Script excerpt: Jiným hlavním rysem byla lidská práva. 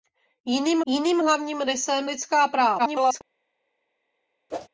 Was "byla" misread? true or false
true